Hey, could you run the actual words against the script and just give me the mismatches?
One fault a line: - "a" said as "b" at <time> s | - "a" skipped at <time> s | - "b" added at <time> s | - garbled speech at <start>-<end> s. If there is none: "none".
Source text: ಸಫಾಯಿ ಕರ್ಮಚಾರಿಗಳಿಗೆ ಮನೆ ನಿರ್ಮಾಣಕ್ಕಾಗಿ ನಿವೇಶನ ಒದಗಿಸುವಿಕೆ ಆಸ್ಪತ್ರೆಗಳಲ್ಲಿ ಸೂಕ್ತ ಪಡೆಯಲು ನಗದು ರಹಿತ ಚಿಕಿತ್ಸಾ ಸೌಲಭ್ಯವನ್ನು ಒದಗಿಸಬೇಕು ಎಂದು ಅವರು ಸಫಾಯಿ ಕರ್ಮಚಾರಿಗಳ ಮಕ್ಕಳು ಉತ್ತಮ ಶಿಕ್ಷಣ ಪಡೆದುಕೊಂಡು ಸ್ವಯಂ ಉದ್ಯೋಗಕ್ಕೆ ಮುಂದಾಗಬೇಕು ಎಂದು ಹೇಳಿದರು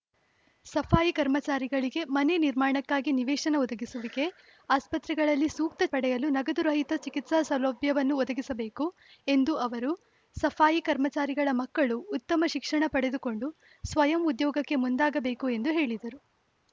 none